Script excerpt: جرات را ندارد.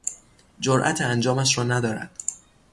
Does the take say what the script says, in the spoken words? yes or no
no